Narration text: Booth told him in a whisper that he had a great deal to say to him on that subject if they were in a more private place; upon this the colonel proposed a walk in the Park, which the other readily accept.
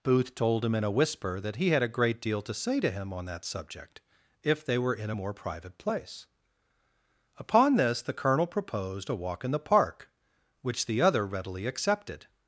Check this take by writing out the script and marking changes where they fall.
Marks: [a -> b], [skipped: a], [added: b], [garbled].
Booth told him in a whisper that he had a great deal to say to him on that subject if they were in a more private place; upon this the colonel proposed a walk in the Park, which the other readily [accept. -> accepted]